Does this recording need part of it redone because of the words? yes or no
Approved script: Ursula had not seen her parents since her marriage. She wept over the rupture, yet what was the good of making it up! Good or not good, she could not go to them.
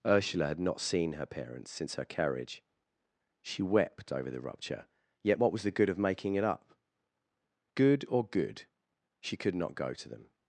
yes